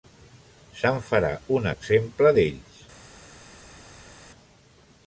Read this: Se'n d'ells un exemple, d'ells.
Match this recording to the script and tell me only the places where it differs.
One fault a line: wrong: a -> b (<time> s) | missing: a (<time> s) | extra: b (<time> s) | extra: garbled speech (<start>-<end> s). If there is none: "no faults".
wrong: d'ells -> farà (1.1 s)